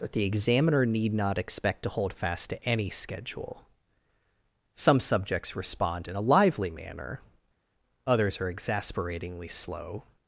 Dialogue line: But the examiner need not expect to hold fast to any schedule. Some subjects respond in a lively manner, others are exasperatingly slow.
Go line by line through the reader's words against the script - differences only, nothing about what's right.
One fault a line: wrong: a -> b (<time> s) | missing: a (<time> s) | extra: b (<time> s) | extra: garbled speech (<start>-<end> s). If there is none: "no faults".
wrong: But -> That (0.0 s)